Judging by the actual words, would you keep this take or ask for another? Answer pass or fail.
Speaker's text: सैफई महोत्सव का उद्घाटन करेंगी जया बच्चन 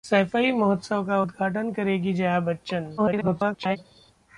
fail